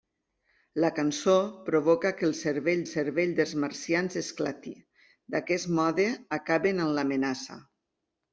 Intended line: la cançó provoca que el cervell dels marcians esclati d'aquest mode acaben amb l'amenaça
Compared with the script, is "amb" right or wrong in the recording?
right